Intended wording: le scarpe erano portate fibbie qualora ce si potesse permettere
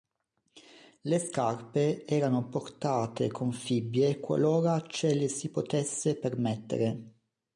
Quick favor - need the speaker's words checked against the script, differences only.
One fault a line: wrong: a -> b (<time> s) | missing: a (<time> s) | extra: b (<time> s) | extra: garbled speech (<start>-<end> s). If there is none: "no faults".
extra: con (3.3 s)
extra: le (5.1 s)